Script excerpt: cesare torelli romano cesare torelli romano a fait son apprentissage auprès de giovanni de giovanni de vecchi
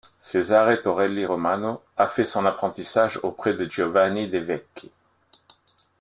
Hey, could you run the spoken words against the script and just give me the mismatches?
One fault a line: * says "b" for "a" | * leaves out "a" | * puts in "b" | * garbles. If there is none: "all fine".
* leaves out "cesare torelli romano"
* leaves out "giovanni de"